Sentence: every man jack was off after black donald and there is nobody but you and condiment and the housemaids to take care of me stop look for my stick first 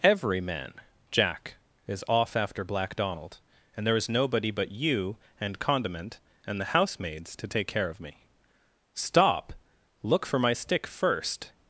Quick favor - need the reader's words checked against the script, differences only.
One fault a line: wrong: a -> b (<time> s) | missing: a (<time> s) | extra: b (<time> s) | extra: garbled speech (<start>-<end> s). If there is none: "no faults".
wrong: was -> is (1.9 s)